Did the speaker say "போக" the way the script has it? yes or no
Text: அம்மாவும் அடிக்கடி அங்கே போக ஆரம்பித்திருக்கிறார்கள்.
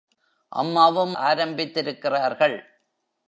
no